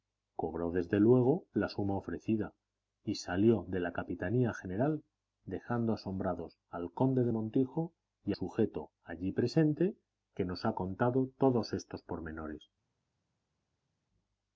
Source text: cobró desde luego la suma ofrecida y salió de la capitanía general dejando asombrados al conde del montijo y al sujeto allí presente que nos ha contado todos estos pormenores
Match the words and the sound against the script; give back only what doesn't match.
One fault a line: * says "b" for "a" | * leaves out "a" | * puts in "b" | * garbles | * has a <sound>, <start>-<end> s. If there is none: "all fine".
* leaves out "al"